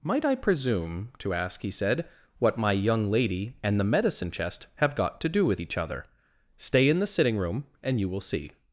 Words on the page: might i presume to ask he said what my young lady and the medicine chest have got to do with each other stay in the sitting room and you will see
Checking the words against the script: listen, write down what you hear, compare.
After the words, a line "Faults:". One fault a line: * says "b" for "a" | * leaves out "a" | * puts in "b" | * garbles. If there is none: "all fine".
might i presume to ask he said what my young lady and the medicine chest have got to do with each other stay in the sitting room and you will see
Faults:
all fine